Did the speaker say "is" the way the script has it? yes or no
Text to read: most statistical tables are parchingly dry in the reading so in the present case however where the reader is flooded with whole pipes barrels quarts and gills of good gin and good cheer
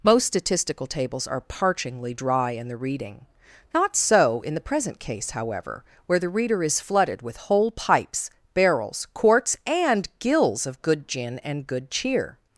yes